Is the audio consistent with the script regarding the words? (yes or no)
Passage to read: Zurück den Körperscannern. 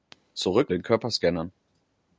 yes